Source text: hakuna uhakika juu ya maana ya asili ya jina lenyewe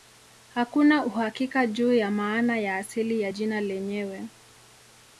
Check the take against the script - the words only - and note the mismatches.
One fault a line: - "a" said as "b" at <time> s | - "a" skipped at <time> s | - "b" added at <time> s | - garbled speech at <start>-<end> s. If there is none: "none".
none